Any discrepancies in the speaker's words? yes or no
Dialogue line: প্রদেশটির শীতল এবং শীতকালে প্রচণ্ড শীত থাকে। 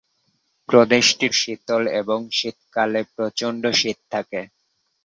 no